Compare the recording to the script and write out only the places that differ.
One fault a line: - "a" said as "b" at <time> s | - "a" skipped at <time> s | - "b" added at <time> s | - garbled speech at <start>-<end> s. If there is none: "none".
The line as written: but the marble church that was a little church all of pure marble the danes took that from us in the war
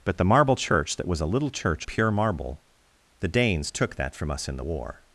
- "all of" skipped at 1.9 s